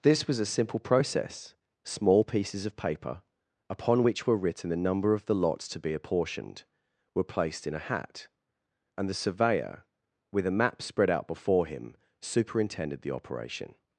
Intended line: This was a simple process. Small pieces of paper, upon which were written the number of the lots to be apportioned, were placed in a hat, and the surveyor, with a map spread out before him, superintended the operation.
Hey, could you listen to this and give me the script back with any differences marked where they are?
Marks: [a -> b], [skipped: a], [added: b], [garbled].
This was a simple process. Small pieces of paper, upon which were written the number of the lots to be apportioned, were placed in a hat, and the surveyor, with a map spread out before him, superintended the operation.